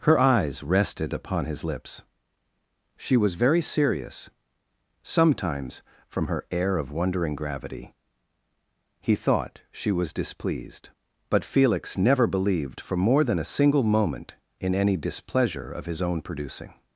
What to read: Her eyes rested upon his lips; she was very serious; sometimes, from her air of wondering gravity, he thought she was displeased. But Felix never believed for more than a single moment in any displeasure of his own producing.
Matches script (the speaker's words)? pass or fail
pass